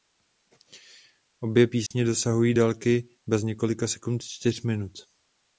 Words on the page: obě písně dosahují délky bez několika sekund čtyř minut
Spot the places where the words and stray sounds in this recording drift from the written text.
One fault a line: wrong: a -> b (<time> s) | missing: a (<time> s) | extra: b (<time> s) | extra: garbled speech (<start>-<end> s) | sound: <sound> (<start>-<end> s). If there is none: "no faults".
sound: dropout (1.9-1.9 s)